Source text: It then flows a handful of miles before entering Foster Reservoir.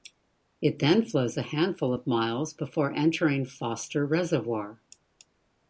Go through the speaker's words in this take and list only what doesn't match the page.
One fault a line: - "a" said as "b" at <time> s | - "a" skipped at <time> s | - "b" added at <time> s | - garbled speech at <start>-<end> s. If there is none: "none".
none